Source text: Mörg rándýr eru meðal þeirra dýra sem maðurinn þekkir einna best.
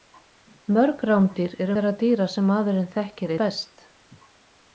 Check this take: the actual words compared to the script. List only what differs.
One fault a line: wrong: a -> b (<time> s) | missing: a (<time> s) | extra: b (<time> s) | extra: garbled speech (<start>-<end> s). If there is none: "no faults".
missing: meðal (1.8 s)
missing: einna (3.3 s)